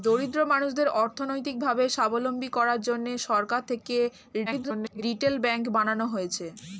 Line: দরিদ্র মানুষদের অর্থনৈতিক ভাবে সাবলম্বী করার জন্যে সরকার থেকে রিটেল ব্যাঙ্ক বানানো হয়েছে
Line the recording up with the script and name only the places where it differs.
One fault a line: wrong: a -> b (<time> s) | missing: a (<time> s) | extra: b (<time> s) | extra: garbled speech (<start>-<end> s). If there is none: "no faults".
extra: garbled speech (4.5-5.0 s)